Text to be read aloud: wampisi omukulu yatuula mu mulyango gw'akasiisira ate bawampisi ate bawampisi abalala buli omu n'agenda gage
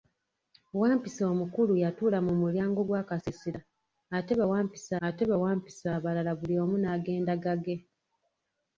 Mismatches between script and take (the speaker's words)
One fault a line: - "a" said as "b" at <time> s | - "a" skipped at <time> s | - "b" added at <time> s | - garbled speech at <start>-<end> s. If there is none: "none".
none